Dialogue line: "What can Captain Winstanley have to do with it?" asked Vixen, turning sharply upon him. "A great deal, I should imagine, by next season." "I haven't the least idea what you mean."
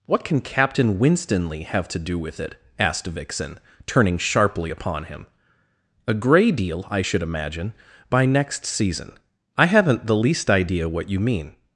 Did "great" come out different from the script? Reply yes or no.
yes